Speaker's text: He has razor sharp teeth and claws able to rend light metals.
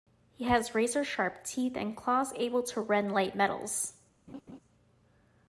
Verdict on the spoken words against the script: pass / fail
pass